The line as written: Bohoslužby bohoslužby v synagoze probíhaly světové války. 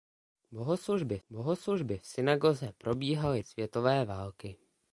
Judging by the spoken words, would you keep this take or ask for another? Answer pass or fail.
pass